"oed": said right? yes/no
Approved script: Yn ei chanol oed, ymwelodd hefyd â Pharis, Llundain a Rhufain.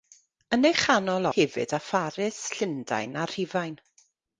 no